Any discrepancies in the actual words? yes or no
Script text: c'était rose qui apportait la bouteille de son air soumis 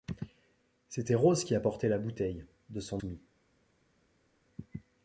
yes